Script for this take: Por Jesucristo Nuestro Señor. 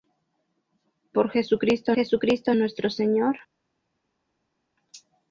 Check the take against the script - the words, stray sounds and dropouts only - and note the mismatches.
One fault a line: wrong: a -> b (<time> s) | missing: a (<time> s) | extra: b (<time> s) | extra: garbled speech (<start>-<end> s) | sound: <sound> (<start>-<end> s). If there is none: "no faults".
extra: Jesucristo (1.9 s)